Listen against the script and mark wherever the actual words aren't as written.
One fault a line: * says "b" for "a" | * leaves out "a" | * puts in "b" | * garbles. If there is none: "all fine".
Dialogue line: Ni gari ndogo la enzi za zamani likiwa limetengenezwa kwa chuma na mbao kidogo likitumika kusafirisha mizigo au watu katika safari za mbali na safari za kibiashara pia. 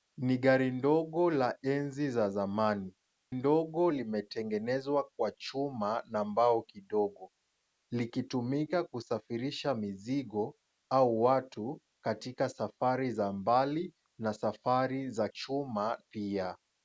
* says "ndogo" for "likiwa"
* says "chuma" for "kibiashara"